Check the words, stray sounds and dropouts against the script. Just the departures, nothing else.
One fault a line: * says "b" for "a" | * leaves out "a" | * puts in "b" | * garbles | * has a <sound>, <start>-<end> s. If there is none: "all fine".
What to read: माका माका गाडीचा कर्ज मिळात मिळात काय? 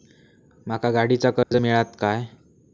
* leaves out "माका"
* has a dropout, 1.4-1.5 s
* leaves out "मिळात"